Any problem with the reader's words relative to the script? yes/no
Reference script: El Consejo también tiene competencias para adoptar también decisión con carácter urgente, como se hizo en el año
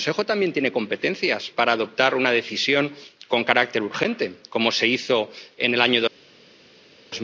yes